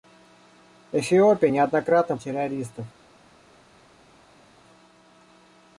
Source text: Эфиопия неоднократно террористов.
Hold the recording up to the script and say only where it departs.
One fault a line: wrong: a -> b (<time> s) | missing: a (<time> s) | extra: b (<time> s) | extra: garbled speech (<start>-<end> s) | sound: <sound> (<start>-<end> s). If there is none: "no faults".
no faults